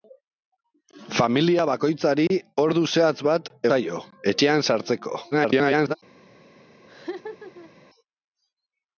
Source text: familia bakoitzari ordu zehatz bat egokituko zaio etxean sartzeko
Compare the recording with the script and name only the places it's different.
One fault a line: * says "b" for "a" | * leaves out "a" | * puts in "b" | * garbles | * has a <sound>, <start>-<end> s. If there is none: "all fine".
* leaves out "egokituko"
* garbles
* has a laugh, 6.9-7.7 s